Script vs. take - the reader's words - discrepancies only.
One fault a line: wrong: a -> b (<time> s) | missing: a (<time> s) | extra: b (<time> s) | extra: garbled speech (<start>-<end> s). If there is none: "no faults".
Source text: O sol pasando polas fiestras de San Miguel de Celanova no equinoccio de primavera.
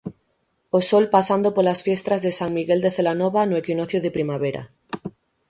no faults